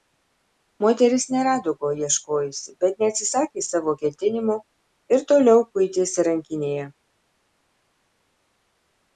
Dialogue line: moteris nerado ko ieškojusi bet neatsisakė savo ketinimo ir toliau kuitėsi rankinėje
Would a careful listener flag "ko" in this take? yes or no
no